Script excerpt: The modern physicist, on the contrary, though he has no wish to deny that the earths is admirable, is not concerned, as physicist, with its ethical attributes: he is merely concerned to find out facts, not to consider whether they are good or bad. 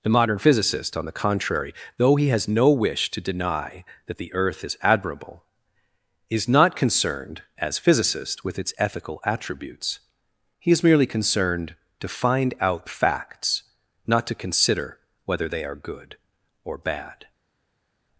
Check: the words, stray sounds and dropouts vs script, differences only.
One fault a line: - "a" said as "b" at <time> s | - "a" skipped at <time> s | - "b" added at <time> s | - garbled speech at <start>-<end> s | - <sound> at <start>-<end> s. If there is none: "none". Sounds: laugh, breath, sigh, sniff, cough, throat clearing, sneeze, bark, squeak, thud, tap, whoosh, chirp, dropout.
- "earths" said as "earth" at 4.3 s